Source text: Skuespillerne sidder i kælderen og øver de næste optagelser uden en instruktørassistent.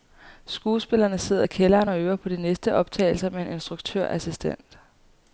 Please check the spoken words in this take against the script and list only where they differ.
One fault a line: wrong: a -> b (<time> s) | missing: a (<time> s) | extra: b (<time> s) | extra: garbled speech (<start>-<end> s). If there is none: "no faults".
extra: på (2.1 s)
wrong: uden -> med (3.3 s)